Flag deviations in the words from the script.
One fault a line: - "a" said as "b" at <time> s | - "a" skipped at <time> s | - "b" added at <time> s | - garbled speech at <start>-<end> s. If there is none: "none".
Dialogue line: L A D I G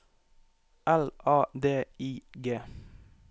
none